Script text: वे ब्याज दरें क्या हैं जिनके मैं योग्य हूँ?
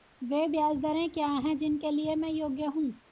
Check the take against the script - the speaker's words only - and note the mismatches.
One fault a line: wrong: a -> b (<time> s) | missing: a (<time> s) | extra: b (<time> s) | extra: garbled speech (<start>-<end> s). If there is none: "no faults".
extra: लिए (1.9 s)